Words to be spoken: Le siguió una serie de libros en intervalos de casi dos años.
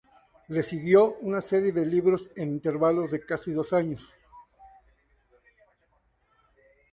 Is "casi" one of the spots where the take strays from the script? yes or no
no